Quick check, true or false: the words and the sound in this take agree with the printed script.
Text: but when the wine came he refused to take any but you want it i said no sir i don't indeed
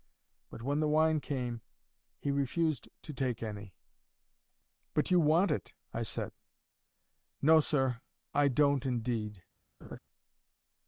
false